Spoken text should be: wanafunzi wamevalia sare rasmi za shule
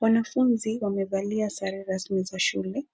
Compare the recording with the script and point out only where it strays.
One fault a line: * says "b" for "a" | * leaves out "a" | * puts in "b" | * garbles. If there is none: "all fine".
all fine